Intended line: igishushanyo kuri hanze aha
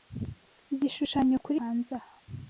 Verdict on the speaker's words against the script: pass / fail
pass